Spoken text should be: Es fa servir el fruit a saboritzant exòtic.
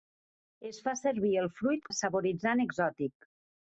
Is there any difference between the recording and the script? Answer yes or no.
no